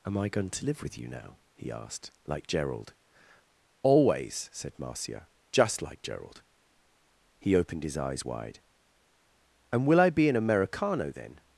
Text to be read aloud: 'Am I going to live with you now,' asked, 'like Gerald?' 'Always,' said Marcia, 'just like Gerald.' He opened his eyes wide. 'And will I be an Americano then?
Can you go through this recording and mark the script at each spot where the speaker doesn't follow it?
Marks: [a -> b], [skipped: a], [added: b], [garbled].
'Am I going to live with you now,' [added: he] asked, 'like Gerald?' 'Always,' said Marcia, 'just like Gerald.' He opened his eyes wide. 'And will I be an Americano then?